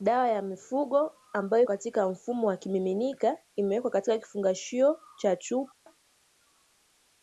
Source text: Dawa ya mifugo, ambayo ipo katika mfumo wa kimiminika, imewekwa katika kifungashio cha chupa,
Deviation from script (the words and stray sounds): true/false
true